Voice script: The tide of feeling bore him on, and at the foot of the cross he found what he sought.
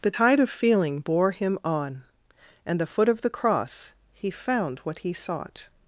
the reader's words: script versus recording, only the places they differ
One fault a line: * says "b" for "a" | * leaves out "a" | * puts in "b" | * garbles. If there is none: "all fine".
* leaves out "at"